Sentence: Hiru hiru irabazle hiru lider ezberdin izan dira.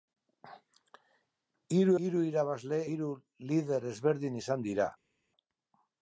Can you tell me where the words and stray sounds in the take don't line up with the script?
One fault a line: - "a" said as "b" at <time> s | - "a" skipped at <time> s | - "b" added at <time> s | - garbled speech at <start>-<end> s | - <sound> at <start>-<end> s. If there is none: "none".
none